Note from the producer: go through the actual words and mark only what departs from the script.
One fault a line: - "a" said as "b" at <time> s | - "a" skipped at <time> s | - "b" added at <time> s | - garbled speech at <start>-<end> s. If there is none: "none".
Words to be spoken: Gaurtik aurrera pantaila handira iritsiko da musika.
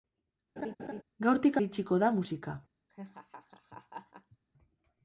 - "aurrera pantaila handira" skipped at 1.6 s